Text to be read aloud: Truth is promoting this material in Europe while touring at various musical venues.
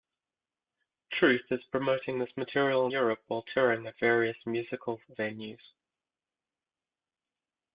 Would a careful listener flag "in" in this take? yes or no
yes